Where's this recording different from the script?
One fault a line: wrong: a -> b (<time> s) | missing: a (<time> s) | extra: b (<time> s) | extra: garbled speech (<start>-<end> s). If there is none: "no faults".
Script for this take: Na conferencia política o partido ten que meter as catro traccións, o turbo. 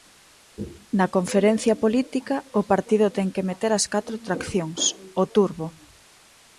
no faults